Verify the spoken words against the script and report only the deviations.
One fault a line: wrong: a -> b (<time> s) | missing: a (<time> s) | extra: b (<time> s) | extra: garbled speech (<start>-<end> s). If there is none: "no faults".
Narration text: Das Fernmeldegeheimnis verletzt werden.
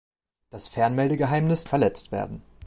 no faults